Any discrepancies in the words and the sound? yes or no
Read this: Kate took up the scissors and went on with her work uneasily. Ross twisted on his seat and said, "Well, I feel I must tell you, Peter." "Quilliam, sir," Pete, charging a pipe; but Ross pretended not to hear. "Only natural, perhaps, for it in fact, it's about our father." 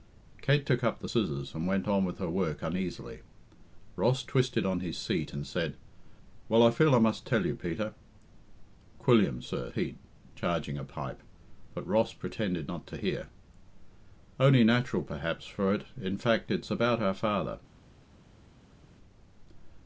no